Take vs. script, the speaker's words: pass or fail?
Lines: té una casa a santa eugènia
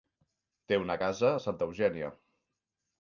pass